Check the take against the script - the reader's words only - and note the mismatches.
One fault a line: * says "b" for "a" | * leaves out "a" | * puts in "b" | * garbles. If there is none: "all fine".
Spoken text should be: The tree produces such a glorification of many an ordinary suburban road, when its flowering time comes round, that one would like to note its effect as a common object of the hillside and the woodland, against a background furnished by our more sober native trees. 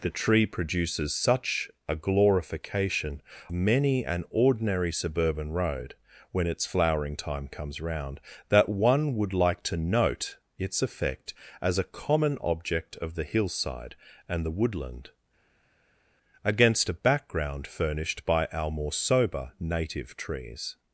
* leaves out "of"